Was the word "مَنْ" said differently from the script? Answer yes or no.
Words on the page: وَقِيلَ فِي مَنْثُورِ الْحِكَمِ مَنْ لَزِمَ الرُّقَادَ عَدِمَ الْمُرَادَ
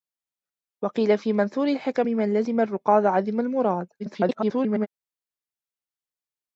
no